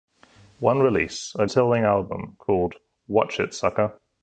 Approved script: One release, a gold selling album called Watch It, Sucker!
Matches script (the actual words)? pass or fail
fail